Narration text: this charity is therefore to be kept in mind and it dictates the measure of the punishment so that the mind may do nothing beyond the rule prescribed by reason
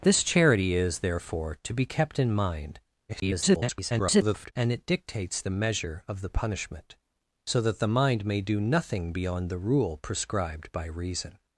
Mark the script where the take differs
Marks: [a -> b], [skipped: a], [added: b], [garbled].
this charity is therefore to be kept in mind [garbled] and it dictates the measure of the punishment so that the mind may do nothing beyond the rule prescribed by reason